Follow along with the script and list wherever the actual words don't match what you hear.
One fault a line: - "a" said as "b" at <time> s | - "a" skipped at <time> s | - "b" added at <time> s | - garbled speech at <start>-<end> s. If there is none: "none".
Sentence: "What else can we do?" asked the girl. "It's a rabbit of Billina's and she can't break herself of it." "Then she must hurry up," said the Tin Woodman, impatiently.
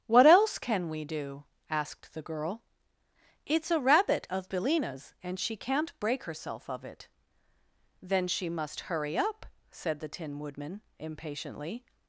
none